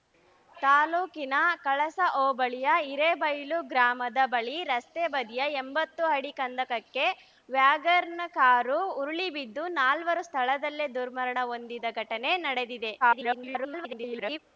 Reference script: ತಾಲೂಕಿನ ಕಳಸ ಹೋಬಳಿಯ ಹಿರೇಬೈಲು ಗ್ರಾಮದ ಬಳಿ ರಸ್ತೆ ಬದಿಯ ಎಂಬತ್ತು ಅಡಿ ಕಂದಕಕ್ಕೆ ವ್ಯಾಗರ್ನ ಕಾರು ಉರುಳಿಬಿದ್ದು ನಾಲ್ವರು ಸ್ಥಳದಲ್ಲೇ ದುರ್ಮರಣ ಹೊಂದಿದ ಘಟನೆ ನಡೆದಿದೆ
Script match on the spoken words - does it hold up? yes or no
no